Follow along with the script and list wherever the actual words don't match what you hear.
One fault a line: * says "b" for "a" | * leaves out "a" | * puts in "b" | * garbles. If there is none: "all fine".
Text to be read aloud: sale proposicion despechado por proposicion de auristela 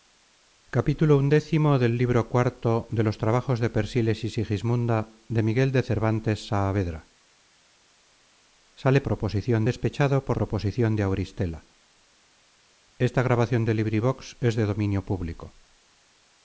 all fine